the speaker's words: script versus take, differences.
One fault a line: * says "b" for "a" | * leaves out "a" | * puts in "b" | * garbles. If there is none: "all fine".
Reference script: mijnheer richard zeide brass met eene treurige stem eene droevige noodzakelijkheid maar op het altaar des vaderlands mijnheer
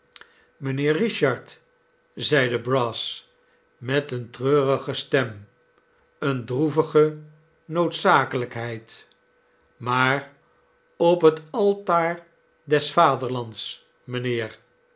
all fine